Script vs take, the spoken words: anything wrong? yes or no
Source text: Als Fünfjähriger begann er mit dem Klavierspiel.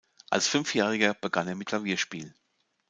yes